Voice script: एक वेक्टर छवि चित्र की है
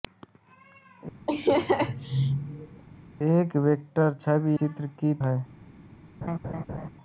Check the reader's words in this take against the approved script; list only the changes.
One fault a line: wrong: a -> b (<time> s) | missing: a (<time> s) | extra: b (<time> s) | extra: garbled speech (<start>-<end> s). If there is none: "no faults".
no faults